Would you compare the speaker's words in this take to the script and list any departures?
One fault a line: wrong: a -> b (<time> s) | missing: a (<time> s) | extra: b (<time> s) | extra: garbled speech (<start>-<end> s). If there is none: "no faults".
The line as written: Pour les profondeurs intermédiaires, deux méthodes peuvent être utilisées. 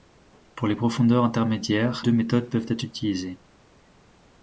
no faults